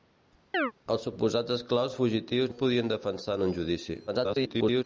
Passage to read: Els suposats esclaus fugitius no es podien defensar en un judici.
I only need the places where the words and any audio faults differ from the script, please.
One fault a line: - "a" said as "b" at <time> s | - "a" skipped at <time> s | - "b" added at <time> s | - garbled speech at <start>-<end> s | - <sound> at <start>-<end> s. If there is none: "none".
- chirp at 0.5-0.7 s
- "no" skipped at 2.5 s
- garbled speech at 4.1-4.8 s